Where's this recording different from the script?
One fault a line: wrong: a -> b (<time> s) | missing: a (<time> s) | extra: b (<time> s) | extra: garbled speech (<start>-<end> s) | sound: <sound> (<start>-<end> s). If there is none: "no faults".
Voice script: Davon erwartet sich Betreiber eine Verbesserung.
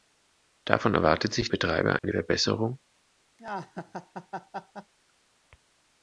sound: dropout (2.0-2.0 s)
sound: laugh (3.4-4.9 s)